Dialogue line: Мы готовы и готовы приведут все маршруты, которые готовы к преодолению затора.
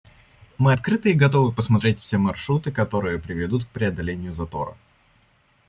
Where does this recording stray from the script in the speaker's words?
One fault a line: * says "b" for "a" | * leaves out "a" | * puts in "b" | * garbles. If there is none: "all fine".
* says "открыты" for "готовы"
* says "посмотреть" for "приведут"
* says "приведут" for "готовы"